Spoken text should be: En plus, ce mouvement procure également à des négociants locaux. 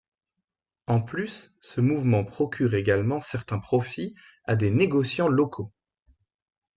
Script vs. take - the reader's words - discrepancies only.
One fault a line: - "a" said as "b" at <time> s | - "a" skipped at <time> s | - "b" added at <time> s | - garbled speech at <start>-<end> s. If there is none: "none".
- "certains profits" added at 3.2 s